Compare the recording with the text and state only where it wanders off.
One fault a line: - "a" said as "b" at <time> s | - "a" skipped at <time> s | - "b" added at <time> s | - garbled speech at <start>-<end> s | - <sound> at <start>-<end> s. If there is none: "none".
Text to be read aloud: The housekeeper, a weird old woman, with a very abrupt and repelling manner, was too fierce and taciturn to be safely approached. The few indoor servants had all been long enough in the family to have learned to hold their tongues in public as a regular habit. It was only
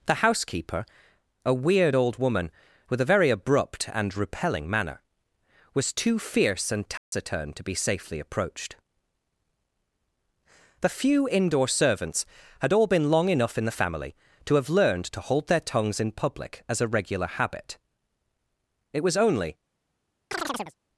- dropout at 7.0-7.1 s
- chirp at 20.3-20.8 s